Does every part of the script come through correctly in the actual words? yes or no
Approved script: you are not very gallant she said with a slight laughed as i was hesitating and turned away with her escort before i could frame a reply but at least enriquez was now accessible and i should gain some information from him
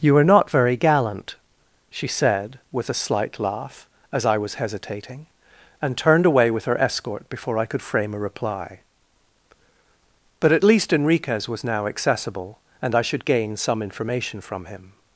no